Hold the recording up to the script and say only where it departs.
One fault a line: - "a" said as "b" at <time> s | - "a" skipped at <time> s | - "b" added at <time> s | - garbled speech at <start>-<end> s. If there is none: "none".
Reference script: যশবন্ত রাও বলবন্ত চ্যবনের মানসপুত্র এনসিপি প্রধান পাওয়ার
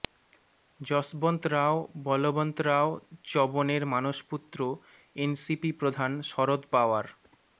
- "রাও" added at 2.6 s
- "শরদ" added at 6.3 s